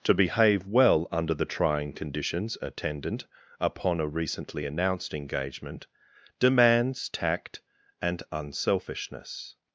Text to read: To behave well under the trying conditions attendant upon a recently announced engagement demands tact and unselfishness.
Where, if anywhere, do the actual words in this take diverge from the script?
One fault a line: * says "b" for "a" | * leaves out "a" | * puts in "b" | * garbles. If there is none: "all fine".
all fine